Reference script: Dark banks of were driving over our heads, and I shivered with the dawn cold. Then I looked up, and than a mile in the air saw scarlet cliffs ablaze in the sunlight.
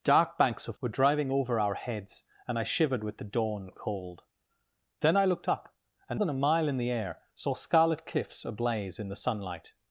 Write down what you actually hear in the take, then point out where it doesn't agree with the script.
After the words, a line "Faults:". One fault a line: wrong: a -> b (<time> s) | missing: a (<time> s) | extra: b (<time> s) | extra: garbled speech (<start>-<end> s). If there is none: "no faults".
Dark banks of were driving over our heads, and I shivered with the dawn cold. Then I looked up, and than a mile in the air saw scarlet cliffs ablaze in the sunlight.
Faults:
no faults